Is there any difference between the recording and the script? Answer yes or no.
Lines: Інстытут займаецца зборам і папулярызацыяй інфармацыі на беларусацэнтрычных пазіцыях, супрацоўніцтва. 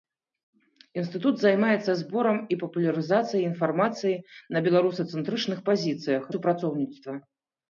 no